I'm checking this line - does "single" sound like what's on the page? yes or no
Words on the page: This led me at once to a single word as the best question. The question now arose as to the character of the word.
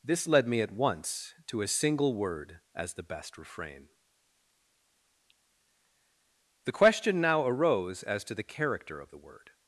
yes